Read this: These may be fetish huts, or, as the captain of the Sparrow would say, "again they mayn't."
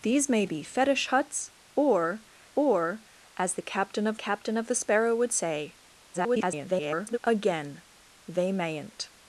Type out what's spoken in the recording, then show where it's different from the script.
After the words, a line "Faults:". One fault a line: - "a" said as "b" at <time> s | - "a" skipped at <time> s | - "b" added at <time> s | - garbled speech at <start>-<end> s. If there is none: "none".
These may be fetish huts, or or, as the captain of captain of the Sparrow would say, [garbled] "again they mayn't."
Faults:
- "or" added at 2.5 s
- "captain of" added at 4.1 s
- garbled speech at 6.1-7.2 s